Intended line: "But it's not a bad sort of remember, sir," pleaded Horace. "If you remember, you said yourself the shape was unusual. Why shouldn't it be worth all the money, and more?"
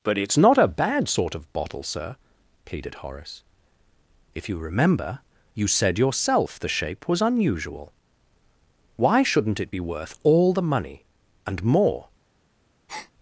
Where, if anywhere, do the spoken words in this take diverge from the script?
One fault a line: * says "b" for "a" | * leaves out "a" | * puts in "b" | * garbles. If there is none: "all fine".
* says "bottle" for "remember"